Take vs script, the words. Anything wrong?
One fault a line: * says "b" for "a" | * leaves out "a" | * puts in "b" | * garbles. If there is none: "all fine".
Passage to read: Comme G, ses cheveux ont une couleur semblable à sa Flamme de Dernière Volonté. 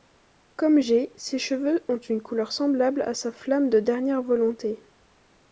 all fine